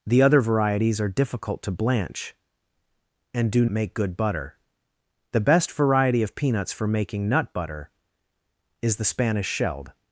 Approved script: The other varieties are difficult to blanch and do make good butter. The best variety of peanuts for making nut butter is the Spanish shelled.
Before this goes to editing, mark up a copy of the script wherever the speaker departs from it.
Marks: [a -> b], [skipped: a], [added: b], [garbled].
The other varieties are difficult to blanch and do make good butter. The best variety of peanuts for making nut butter is the Spanish shelled.